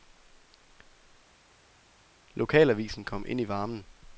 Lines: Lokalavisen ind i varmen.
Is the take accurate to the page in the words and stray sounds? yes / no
no